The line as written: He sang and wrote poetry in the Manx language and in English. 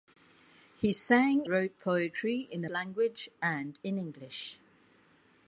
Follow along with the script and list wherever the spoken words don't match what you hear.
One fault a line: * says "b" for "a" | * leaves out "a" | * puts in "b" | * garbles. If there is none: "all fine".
* leaves out "and"
* leaves out "Manx"